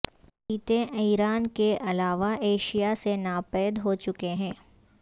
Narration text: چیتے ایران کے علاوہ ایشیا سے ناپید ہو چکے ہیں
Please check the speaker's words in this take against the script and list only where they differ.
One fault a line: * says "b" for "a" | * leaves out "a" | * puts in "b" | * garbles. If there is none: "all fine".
all fine